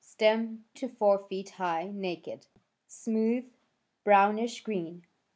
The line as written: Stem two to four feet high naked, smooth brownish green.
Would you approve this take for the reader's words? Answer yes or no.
no